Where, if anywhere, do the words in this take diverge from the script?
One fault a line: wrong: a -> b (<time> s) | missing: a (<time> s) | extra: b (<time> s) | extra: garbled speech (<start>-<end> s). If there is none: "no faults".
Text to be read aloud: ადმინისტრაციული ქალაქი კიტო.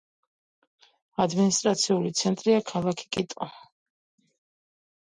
extra: ცენტრია (2.2 s)